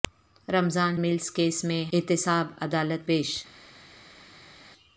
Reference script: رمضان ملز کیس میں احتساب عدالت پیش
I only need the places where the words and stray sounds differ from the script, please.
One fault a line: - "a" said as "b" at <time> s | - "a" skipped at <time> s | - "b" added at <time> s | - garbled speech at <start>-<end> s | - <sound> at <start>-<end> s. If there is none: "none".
none